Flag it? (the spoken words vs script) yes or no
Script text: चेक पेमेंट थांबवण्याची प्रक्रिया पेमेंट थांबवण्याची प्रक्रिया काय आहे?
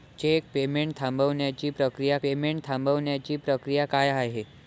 no